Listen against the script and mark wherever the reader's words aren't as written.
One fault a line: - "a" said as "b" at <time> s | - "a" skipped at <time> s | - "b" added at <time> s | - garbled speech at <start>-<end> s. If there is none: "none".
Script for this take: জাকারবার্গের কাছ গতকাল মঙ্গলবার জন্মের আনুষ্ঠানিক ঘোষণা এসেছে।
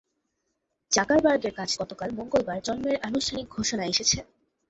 none